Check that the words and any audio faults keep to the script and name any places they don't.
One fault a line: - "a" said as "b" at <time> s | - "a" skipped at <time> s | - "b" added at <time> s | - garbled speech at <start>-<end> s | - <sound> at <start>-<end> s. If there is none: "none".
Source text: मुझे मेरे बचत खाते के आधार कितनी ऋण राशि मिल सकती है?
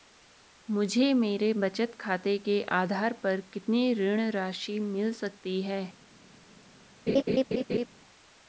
- "पर" added at 3.1 s
- laugh at 7.1-7.9 s